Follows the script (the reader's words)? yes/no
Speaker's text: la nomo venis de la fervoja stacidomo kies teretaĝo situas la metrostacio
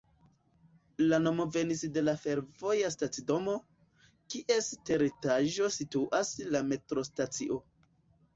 yes